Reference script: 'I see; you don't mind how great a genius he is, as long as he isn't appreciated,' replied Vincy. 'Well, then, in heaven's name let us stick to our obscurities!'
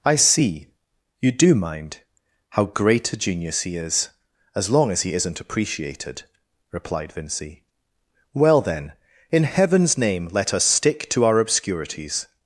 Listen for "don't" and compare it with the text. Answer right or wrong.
wrong